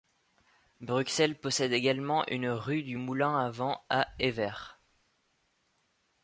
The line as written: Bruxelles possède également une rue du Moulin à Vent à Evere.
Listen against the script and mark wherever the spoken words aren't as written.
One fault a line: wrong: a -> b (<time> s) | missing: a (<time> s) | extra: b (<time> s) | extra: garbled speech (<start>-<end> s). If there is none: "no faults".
no faults